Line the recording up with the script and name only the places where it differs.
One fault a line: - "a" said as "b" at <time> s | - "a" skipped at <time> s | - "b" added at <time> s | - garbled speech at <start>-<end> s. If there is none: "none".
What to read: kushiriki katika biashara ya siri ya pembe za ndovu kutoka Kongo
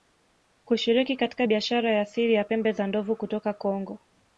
none